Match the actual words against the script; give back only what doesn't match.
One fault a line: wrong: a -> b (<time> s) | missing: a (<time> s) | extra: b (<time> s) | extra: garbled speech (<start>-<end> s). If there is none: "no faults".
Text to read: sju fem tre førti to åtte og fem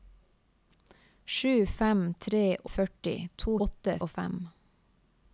no faults